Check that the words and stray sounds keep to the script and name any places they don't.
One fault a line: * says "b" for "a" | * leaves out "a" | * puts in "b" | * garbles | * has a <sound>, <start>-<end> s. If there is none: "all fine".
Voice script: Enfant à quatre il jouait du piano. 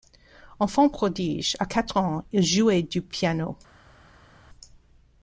* puts in "prodige"
* puts in "ans"